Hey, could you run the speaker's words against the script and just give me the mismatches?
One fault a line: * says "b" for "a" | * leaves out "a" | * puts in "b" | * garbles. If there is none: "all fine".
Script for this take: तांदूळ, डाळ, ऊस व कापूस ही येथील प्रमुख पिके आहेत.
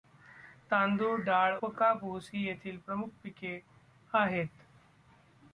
* leaves out "ऊस"